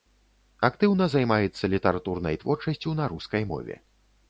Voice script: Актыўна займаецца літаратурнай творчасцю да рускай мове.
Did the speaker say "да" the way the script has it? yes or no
no